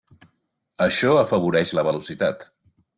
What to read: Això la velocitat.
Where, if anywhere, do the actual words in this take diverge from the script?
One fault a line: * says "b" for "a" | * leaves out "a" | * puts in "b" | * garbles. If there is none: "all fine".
* puts in "afavoreix"